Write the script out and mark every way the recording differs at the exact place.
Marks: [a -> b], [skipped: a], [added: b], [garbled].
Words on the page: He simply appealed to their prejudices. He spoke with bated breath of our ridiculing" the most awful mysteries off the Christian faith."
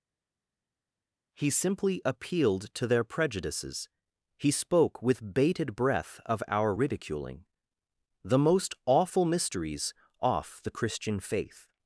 He simply appealed to their prejudices. He spoke with bated breath of our ridiculing" the most awful mysteries off the Christian faith."